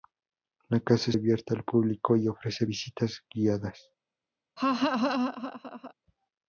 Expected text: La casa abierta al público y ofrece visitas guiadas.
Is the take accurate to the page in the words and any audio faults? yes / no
no